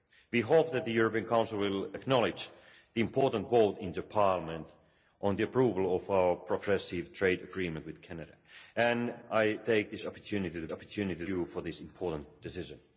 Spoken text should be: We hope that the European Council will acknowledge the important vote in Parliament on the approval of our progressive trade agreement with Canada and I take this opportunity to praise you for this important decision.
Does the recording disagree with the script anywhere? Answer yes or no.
yes